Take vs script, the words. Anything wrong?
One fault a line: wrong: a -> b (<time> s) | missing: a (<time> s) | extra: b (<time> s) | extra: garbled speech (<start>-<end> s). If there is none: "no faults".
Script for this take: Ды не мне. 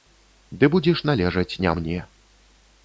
extra: будзеш належаць (0.8 s)